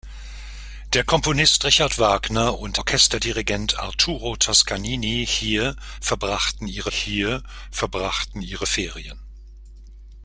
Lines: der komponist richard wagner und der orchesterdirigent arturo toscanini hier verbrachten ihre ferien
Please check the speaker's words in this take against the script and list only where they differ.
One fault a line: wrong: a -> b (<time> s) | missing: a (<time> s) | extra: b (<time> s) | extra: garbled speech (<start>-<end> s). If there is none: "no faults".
missing: der (2.8 s)
extra: hier verbrachten ihre (6.9 s)